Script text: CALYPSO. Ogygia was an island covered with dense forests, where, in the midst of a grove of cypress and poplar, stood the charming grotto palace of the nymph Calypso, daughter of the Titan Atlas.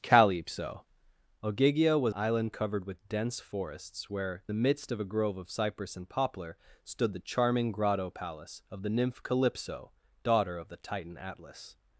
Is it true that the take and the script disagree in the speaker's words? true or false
true